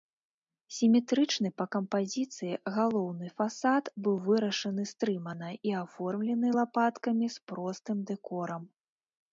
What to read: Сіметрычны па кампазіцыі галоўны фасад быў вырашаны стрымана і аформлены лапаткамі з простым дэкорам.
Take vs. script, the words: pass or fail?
pass